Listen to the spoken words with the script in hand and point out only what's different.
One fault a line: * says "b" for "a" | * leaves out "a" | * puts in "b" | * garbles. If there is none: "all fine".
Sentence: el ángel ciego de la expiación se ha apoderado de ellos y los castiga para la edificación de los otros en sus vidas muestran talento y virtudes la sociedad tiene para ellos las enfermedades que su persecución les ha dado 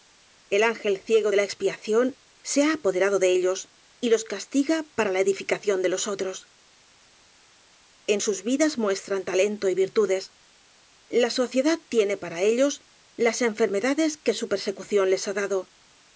all fine